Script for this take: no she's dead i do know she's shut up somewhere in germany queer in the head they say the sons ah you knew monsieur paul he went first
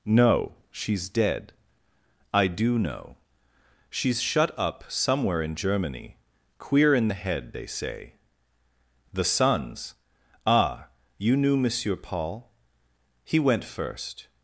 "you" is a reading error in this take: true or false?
false